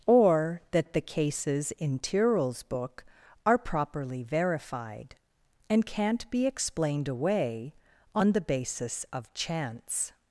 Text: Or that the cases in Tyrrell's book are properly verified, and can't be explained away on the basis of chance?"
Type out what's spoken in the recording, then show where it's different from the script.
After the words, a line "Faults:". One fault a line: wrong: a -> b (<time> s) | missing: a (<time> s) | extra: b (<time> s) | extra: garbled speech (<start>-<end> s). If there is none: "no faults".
Or that the cases in Tyrrell's book are properly verified, and can't be explained away on the basis of chance?"
Faults:
no faults